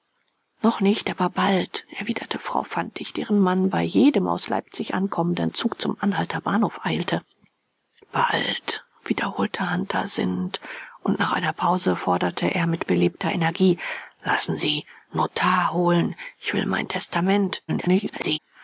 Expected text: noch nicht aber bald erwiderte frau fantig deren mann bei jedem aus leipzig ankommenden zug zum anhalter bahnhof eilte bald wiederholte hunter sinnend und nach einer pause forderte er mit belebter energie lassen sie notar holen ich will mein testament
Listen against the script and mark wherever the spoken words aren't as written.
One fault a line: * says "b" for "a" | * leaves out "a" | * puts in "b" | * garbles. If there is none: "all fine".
* garbles